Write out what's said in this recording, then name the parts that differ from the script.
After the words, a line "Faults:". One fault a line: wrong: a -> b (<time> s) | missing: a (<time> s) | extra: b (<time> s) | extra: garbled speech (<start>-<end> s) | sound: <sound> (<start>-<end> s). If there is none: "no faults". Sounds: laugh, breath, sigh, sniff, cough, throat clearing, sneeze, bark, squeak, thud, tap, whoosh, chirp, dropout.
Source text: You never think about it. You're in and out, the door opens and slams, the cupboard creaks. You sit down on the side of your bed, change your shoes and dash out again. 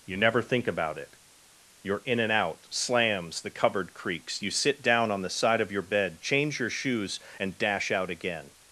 You never think about it. You're in and out, slams, the cupboard creaks. You sit down on the side of your bed, change your shoes and dash out again.
Faults:
missing: the door opens and (2.7 s)